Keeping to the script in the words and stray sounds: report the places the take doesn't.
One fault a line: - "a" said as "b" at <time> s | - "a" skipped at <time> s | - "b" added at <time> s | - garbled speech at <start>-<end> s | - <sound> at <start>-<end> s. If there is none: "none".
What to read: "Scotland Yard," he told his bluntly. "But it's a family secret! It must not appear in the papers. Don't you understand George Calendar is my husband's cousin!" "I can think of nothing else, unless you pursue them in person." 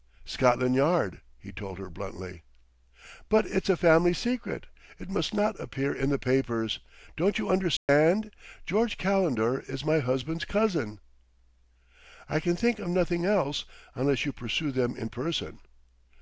- "his" said as "her" at 1.8 s
- dropout at 7.8-7.9 s